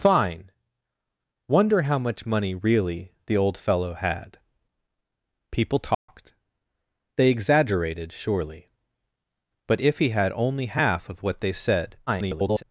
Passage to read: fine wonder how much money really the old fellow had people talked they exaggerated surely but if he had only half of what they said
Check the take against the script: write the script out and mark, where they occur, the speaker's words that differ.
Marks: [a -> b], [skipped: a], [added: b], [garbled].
fine wonder how much money really the old fellow had people talked they exaggerated surely but if he had only half of what they said [garbled]